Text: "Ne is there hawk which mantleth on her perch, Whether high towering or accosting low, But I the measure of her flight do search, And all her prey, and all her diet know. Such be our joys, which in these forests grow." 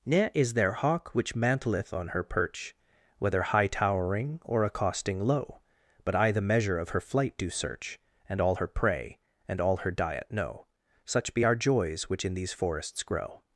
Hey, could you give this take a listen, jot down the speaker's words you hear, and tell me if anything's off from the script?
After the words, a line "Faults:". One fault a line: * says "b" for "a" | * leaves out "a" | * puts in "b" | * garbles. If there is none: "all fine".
"Ne is there hawk which mantleth on her perch, Whether high towering or accosting low, But I the measure of her flight do search, And all her prey, and all her diet know. Such be our joys, which in these forests grow."
Faults:
all fine